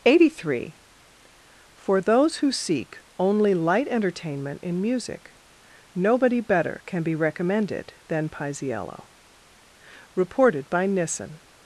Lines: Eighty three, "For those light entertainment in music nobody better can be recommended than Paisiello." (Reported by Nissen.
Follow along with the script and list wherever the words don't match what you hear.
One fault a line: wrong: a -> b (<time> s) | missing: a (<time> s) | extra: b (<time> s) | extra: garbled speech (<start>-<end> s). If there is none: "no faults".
extra: who seek only (2.4 s)